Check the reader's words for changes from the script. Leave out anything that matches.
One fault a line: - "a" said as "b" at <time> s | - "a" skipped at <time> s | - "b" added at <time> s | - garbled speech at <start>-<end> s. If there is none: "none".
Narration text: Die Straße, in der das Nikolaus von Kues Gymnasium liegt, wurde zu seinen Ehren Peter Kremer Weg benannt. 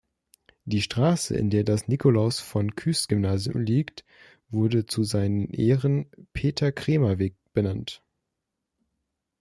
none